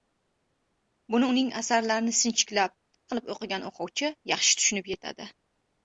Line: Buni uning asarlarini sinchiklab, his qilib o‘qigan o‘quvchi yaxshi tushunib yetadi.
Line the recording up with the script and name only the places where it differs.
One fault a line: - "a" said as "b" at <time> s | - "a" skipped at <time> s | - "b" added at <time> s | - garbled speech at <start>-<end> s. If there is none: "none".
- "his" skipped at 2.7 s